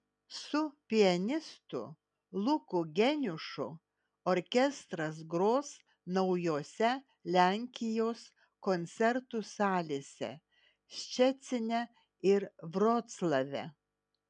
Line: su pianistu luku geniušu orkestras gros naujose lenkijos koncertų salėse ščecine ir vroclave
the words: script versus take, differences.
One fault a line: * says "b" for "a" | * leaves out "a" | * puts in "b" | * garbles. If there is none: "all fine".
all fine